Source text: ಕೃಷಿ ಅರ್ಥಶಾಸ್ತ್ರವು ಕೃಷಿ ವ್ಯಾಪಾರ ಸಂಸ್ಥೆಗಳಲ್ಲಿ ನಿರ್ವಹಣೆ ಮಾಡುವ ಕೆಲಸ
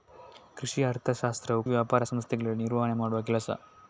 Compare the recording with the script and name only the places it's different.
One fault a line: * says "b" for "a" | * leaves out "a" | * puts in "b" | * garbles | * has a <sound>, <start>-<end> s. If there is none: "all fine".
* leaves out "ಕೃಷಿ"